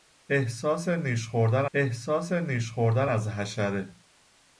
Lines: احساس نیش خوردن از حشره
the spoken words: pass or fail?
fail